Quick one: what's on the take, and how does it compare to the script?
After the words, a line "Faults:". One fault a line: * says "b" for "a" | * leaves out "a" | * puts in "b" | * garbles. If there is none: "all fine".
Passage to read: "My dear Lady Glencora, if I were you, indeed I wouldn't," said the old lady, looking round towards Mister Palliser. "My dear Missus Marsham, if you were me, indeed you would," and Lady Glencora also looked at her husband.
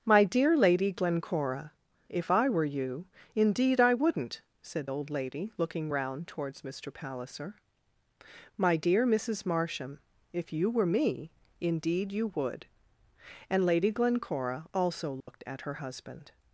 "My dear Lady Glencora, if I were you, indeed I wouldn't," said old lady, looking round towards Mister Palliser. "My dear Missus Marsham, if you were me, indeed you would," and Lady Glencora also looked at her husband.
Faults:
* leaves out "the"